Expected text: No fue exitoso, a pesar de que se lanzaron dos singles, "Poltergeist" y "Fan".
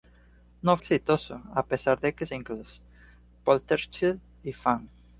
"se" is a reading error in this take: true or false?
true